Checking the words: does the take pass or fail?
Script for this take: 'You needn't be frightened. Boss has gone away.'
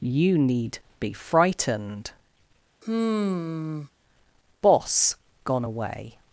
fail